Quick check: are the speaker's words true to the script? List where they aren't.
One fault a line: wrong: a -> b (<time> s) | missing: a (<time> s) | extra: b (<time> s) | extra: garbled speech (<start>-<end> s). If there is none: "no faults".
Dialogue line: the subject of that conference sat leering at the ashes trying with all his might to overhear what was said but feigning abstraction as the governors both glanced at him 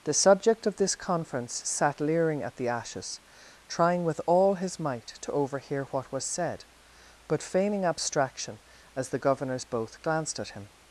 wrong: that -> this (0.8 s)